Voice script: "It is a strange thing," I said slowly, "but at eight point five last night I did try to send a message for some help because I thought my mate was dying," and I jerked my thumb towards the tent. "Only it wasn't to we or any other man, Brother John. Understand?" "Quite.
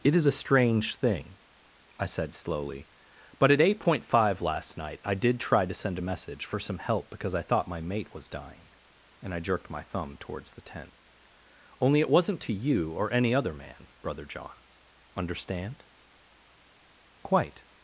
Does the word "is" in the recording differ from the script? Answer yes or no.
no